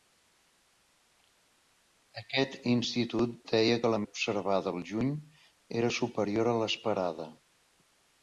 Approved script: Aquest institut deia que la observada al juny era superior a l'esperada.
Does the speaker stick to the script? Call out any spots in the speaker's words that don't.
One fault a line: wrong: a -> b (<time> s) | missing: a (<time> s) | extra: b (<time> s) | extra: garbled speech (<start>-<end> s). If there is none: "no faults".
no faults